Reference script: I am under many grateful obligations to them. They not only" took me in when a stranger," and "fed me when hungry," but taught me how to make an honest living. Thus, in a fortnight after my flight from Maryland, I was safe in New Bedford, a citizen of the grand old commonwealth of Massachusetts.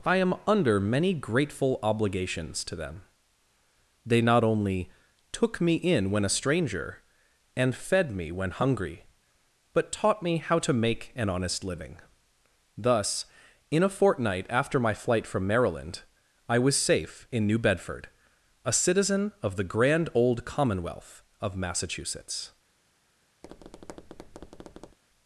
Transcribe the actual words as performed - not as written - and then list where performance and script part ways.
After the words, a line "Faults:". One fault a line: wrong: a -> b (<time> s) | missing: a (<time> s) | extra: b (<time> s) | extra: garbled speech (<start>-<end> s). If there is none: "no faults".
I am under many grateful obligations to them. They not only" took me in when a stranger," and "fed me when hungry," but taught me how to make an honest living. Thus, in a fortnight after my flight from Maryland, I was safe in New Bedford, a citizen of the grand old commonwealth of Massachusetts.
Faults:
no faults